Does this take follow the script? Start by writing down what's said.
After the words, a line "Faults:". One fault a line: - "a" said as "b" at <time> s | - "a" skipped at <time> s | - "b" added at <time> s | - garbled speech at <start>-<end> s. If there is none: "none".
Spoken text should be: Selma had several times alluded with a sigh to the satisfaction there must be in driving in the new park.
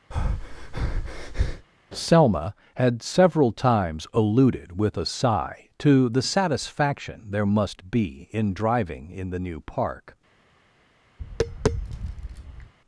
Selma had several times alluded with a sigh to the satisfaction there must be in driving in the new park.
Faults:
none